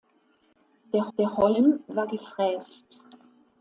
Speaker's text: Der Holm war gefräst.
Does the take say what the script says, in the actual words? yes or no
no